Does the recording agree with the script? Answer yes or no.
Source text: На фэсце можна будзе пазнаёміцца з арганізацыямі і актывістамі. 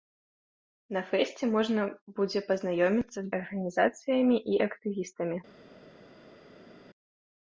yes